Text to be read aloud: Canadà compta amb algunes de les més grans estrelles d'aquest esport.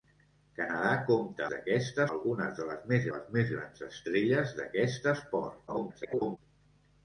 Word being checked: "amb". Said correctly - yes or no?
no